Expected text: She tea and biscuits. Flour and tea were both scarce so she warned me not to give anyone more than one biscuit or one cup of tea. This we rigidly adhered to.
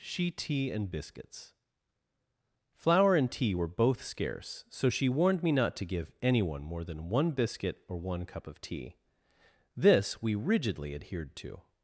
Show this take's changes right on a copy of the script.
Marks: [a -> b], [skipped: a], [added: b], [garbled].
She tea and biscuits. Flour and tea were both scarce so she warned me not to give anyone more than one biscuit or one cup of tea. This we rigidly adhered to.